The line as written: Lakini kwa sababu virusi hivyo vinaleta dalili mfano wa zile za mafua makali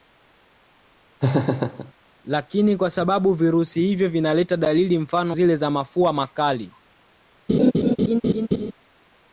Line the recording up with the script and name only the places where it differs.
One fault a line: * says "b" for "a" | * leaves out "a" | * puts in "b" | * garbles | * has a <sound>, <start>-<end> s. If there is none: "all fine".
* has a laugh, 1.2-1.9 s
* leaves out "wa"
* has a laugh, 7.5-8.7 s